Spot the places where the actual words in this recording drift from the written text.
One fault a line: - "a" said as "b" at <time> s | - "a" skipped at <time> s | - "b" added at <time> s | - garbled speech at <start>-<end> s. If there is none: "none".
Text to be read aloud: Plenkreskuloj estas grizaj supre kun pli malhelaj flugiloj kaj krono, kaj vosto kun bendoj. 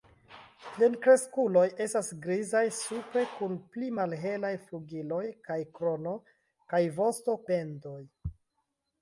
- "kun" skipped at 7.4 s